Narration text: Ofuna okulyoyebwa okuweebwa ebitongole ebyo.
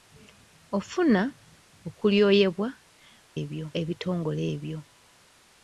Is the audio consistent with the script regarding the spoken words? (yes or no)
no